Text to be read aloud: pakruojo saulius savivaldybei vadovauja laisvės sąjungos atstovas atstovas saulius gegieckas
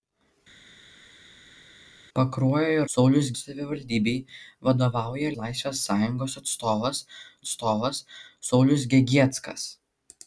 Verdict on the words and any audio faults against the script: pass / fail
pass